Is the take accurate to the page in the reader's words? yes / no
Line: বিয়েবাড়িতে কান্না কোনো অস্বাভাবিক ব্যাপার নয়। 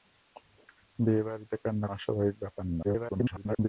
no